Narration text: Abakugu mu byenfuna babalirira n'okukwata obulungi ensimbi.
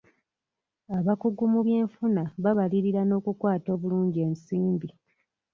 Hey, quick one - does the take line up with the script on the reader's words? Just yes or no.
yes